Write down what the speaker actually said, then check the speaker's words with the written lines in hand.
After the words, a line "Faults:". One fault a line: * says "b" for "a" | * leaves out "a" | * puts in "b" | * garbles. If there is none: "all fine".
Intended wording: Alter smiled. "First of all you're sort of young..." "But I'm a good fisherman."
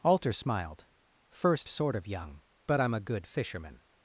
Alter smiled. "First sort of young..." "But I'm a good fisherman."
Faults:
* leaves out "of all you're"